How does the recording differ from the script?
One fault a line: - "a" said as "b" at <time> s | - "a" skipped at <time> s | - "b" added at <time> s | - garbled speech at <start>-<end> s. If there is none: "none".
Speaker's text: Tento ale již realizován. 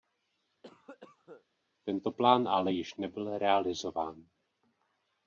- "plán" added at 2.1 s
- "nebyl" added at 2.9 s